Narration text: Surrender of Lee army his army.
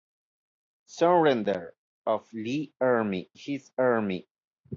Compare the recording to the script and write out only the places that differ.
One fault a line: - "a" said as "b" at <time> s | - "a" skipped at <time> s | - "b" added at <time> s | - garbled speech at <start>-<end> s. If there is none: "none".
none